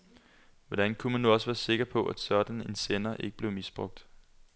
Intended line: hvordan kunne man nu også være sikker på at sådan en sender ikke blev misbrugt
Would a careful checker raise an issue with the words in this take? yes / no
no